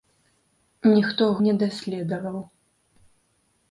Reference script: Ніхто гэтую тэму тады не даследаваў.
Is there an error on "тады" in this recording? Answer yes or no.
yes